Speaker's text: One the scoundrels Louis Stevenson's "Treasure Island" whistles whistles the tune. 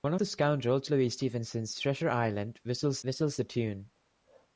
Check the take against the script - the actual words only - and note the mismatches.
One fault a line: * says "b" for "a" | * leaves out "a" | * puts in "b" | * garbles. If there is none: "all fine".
all fine